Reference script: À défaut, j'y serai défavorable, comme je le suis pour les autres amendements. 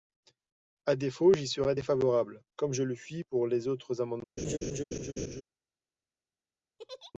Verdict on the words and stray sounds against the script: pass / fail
fail